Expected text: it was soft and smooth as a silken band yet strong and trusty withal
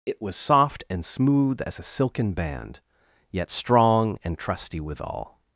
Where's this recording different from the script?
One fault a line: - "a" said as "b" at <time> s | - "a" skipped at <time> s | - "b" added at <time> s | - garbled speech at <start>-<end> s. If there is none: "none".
none